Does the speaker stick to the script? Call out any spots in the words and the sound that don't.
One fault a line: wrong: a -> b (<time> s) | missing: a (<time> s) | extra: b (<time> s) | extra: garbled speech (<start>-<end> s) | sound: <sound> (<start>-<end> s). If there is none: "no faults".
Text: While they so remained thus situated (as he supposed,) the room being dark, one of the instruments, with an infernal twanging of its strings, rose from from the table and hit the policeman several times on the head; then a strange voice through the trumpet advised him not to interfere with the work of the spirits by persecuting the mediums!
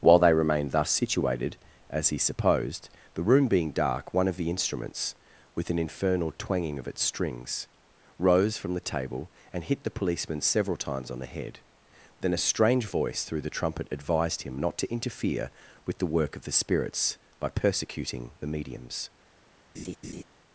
missing: so (0.3 s)
missing: from (8.7 s)
sound: laugh (19.7-20.2 s)